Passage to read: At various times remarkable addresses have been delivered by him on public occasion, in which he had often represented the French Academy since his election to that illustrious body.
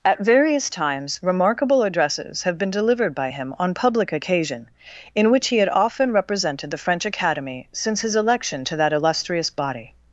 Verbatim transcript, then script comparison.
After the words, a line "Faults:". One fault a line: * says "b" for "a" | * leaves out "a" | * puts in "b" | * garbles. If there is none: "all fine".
At various times remarkable addresses have been delivered by him on public occasion, in which he had often represented the French Academy since his election to that illustrious body.
Faults:
all fine